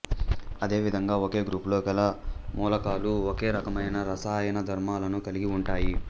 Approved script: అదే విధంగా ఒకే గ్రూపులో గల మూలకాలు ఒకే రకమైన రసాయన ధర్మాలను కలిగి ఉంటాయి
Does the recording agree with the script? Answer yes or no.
yes